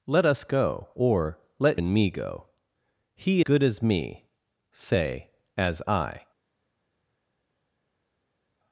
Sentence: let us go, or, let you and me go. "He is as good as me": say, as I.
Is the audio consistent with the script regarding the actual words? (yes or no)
no